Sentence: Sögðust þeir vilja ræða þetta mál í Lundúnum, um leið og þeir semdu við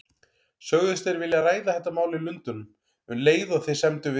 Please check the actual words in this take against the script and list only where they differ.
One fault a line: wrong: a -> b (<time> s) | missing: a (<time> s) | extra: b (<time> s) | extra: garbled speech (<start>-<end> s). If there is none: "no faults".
no faults